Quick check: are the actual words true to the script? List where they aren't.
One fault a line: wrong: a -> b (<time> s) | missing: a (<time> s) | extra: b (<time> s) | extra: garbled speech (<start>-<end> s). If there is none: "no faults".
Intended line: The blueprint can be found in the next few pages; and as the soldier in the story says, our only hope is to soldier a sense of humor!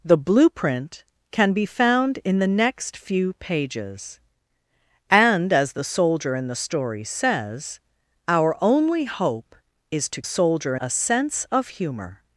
no faults